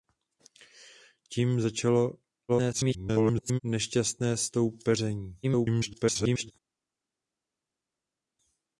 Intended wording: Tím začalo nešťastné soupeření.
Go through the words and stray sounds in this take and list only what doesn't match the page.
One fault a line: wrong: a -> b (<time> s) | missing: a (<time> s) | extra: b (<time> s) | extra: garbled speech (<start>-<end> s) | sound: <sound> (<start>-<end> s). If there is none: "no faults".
extra: garbled speech (2.5-3.6 s)
extra: garbled speech (5.4-6.5 s)